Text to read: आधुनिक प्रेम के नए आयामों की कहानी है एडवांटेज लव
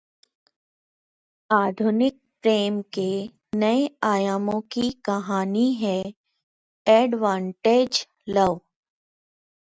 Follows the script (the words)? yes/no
yes